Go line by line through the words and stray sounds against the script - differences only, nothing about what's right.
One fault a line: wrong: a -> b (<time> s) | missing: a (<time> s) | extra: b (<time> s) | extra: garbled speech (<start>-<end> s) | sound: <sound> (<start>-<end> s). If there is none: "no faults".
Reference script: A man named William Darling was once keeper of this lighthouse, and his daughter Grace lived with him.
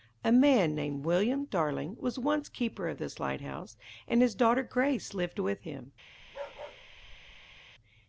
sound: bark (6.2-7.6 s)